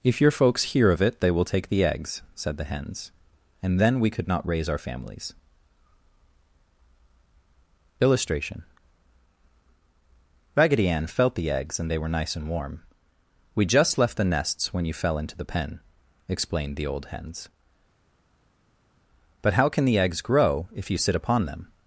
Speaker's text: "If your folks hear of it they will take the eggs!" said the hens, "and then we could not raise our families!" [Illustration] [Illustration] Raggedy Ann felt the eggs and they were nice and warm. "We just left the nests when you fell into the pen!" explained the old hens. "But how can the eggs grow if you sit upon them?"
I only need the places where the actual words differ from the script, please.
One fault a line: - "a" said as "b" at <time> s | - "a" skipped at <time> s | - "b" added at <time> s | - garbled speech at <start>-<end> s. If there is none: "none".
- "Illustration" skipped at 8.6 s